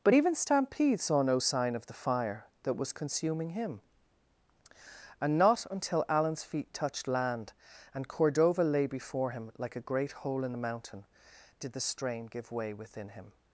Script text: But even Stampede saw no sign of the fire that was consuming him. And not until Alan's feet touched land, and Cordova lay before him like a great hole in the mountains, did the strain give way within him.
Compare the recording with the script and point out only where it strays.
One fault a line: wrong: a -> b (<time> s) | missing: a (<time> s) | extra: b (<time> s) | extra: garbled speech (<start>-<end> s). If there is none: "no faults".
wrong: mountains -> mountain (10.6 s)